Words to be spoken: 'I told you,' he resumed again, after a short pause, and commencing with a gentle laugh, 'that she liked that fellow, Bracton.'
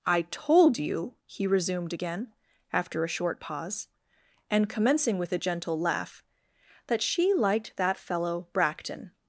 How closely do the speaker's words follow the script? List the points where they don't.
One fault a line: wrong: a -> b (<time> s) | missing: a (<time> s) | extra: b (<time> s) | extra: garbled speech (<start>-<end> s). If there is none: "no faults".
no faults